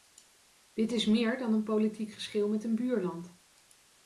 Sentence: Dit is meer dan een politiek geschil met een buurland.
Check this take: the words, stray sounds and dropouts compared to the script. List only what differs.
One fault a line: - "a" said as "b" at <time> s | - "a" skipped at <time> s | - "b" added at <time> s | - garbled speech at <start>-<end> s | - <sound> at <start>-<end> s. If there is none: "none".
none